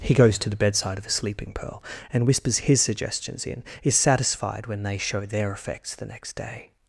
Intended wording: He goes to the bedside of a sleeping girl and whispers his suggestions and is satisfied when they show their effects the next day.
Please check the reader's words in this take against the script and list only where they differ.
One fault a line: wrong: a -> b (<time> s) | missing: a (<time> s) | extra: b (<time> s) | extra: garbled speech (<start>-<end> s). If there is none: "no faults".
wrong: girl -> pearl (1.5 s)
wrong: and -> in (3.5 s)